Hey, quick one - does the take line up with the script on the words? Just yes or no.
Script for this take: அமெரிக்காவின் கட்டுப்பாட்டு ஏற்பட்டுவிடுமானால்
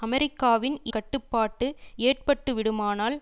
yes